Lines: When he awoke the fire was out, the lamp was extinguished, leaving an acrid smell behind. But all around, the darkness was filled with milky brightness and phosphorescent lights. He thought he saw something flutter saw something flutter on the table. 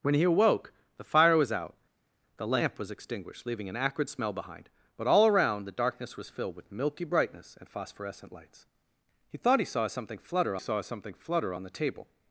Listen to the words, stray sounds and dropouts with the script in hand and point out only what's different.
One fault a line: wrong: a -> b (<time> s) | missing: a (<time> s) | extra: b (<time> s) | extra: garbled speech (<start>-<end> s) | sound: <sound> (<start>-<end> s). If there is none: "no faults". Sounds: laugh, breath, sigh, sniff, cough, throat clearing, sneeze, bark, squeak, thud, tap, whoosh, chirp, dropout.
no faults